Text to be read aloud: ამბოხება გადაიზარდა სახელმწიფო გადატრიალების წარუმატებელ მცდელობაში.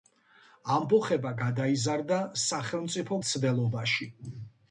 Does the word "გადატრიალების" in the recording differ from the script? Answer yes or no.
yes